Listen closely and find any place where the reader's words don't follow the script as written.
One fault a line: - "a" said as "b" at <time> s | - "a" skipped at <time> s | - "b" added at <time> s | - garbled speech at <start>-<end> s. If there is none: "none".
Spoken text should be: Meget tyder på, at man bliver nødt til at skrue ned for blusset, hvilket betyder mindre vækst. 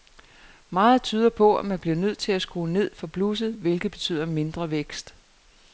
none